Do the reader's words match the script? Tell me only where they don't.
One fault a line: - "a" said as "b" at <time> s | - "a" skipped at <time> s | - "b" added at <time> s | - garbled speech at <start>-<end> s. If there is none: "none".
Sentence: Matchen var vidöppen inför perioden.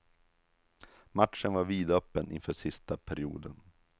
- "sista" added at 2.5 s